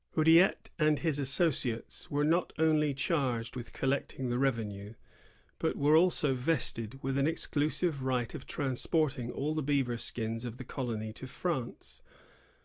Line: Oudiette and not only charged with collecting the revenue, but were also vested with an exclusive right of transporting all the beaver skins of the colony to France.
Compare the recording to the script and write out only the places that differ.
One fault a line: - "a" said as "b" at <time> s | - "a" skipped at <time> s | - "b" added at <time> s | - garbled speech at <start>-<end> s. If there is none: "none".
- "his associates were" added at 1.0 s